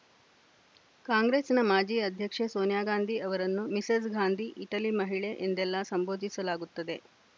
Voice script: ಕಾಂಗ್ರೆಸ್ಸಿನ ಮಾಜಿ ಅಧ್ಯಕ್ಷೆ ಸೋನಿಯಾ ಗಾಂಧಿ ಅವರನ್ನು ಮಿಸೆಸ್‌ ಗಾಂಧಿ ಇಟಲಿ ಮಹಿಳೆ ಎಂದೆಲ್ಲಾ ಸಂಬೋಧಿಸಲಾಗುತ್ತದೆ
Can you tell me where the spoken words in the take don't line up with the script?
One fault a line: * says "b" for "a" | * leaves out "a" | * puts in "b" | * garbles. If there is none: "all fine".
all fine